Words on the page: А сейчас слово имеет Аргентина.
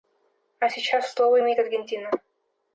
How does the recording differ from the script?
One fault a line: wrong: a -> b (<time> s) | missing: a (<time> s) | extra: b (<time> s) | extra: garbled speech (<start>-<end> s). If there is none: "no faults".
no faults